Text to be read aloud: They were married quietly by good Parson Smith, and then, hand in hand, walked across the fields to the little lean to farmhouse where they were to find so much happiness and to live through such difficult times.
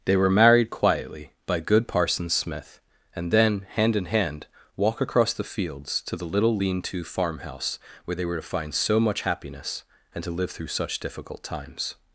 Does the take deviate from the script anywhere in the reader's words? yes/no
yes